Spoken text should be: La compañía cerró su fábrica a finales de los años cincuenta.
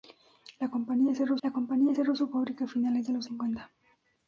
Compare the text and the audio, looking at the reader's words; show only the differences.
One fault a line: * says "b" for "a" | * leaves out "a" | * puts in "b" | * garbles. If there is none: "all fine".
* puts in "la compañía cerró"
* leaves out "años"